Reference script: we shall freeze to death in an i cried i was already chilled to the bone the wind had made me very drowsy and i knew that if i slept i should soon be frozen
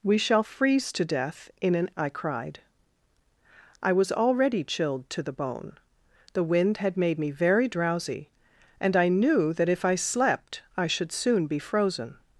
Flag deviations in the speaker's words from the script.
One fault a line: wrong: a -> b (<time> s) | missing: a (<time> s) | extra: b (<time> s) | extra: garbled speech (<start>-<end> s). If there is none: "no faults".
no faults